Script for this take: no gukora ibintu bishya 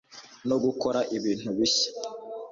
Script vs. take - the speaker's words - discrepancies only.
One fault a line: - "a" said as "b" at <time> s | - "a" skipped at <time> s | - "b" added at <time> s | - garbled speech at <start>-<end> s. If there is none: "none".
none